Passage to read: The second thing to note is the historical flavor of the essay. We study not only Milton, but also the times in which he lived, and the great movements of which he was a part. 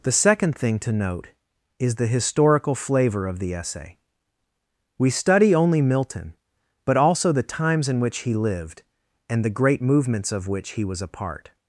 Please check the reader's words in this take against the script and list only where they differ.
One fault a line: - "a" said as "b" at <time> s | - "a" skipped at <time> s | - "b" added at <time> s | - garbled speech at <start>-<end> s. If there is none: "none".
- "not" skipped at 5.5 s